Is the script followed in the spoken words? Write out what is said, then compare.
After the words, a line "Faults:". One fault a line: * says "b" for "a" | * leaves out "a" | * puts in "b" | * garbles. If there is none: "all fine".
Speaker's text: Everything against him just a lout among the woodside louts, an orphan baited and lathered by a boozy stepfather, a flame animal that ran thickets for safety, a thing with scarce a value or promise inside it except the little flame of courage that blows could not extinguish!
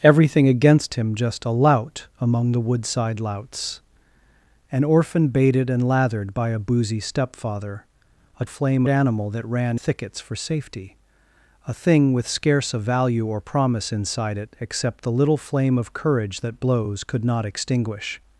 Everything against him just a lout among the woodside louts, an orphan baited and lathered by a boozy stepfather, a flame animal that ran thickets for safety, a thing with scarce a value or promise inside it except the little flame of courage that blows could not extinguish!
Faults:
all fine